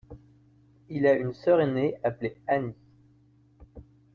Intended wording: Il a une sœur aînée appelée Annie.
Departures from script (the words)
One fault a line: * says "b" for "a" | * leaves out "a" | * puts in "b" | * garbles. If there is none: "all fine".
all fine